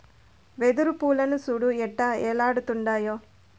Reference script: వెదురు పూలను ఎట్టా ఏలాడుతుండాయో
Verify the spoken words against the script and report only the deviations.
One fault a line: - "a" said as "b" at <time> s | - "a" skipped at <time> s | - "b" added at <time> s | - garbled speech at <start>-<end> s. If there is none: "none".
- "సూడు" added at 1.4 s